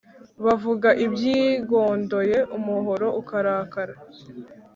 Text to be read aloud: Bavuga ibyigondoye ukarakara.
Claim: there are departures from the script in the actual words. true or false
true